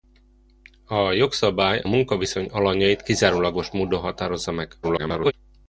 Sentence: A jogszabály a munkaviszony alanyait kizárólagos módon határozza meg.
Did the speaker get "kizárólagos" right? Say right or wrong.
right